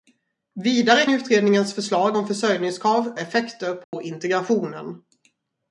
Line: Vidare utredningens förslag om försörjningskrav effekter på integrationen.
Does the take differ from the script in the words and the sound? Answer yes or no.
yes